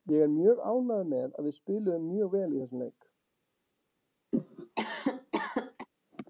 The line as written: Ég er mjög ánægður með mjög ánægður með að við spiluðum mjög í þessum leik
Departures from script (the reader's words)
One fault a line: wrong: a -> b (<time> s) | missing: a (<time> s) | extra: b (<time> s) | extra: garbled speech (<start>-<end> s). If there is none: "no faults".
missing: mjög ánægður með (1.4 s)
extra: vel (2.4 s)